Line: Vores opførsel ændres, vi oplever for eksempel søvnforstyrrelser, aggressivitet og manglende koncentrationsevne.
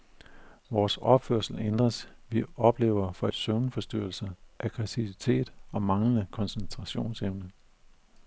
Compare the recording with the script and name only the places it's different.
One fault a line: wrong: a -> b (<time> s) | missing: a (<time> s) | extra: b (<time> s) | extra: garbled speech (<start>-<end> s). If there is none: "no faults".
missing: eksempel (3.3 s)